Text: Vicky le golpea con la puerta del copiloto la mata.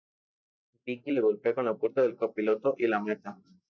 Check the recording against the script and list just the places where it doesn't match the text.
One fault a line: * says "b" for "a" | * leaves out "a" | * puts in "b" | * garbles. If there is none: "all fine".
* puts in "y"